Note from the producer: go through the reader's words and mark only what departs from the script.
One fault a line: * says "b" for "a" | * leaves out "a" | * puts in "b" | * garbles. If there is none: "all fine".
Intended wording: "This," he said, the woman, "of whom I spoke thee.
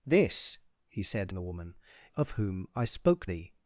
all fine